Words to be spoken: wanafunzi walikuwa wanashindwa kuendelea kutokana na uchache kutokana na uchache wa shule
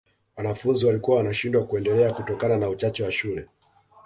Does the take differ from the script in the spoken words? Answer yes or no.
yes